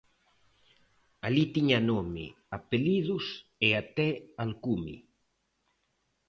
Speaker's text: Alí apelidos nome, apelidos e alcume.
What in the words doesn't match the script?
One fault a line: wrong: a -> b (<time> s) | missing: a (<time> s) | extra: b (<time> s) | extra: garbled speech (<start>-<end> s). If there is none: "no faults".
wrong: apelidos -> tiña (1.6 s)
extra: até (3.8 s)